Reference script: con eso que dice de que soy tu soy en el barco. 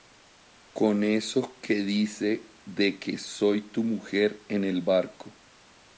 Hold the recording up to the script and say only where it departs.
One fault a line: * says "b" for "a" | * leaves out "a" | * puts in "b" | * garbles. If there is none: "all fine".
* says "mujer" for "soy"